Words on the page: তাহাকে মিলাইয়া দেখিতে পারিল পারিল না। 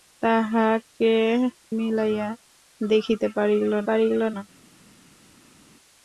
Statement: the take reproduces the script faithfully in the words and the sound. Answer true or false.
true